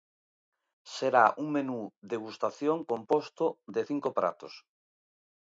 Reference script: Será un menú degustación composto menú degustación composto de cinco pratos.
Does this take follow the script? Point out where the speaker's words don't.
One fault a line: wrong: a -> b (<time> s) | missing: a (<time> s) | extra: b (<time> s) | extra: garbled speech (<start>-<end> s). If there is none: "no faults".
missing: menú degustación composto (3.5 s)